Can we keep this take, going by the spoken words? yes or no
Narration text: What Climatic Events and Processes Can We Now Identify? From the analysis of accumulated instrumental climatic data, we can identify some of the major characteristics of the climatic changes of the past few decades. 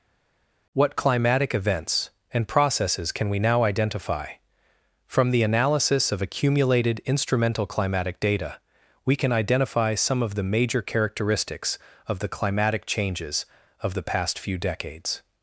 yes